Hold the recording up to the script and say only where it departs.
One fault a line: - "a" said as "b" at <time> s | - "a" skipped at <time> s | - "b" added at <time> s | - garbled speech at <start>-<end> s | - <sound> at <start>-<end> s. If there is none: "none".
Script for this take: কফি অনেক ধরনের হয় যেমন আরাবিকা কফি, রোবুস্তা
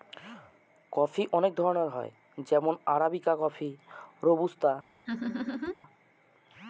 - laugh at 5.1-5.8 s